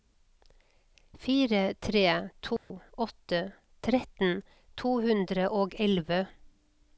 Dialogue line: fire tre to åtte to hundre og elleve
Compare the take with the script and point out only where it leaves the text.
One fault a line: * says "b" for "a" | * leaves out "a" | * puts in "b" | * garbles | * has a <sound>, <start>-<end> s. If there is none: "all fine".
* has a dropout, 2.6-2.7 s
* puts in "tretten"